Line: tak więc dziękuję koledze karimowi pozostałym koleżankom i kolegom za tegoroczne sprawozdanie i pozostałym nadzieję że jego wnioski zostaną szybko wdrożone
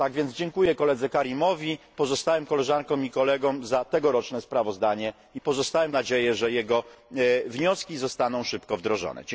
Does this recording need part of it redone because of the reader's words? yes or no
no